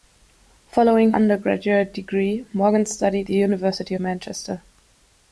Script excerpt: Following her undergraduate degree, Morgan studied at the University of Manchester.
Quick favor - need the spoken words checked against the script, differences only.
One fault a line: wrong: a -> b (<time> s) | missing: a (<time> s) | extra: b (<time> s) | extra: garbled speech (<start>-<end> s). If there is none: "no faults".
missing: her (1.1 s)
missing: at (3.3 s)
missing: of (3.9 s)